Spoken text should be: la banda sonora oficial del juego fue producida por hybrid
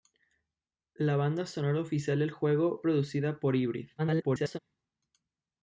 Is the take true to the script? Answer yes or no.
no